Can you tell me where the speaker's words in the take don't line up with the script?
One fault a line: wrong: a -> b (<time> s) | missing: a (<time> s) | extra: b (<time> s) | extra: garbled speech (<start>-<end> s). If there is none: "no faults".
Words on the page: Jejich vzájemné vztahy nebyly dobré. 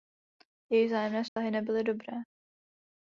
no faults